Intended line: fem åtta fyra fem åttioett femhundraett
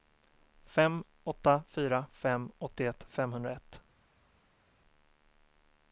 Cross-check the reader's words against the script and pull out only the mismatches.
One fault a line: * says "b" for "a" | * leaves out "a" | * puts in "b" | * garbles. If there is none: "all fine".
all fine